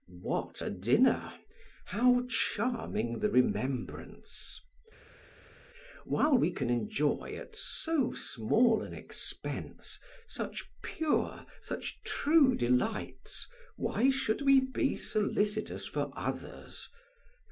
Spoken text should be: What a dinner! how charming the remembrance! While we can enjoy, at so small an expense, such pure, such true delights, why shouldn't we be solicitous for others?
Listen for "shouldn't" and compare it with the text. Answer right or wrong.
wrong